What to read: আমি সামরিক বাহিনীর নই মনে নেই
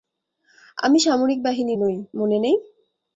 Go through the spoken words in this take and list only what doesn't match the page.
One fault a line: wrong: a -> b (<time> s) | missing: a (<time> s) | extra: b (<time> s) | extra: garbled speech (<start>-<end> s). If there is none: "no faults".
no faults